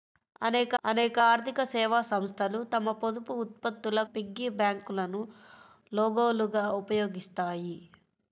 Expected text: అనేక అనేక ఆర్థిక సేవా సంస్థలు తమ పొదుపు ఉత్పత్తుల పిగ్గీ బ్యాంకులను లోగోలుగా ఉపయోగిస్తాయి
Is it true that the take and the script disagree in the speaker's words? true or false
false